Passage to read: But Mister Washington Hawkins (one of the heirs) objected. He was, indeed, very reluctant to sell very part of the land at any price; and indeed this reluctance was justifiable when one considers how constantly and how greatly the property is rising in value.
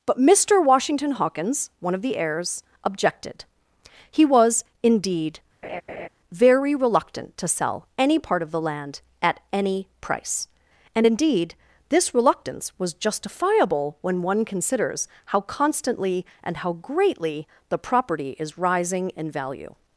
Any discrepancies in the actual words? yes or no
yes